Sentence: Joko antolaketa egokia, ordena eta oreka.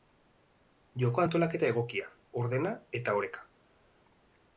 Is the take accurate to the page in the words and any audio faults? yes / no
yes